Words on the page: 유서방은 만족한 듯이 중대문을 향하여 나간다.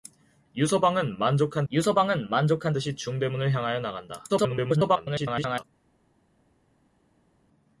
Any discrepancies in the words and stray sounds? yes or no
yes